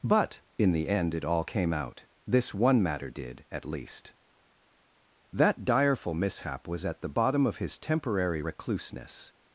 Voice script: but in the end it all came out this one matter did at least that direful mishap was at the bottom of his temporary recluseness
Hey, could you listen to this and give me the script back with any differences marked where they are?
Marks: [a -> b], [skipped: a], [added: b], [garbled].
but in the end it all came out this one matter did at least that direful mishap was at the bottom of his temporary recluseness